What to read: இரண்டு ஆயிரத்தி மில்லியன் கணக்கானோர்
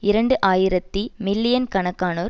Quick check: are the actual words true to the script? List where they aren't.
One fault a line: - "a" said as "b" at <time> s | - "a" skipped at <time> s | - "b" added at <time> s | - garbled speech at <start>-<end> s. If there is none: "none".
none